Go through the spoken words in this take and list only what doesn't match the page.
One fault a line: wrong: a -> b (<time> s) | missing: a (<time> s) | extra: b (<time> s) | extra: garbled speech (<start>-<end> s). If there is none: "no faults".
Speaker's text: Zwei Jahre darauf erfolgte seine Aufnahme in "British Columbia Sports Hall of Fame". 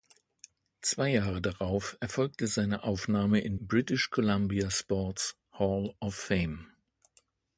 no faults